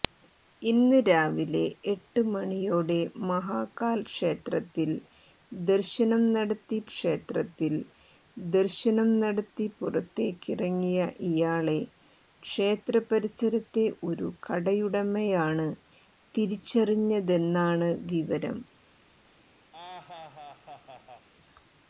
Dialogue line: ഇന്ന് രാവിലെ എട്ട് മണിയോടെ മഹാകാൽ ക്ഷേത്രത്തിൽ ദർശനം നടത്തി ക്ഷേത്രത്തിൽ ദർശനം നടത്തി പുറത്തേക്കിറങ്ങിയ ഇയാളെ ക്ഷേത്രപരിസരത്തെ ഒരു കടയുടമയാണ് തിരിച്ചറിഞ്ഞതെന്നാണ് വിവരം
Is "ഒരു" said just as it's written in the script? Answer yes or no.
yes